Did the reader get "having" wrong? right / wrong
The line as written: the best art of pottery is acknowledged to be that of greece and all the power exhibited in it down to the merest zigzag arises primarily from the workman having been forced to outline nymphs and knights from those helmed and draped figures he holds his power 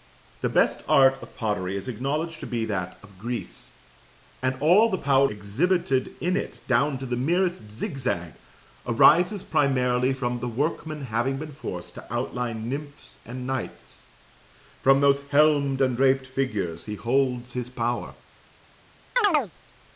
right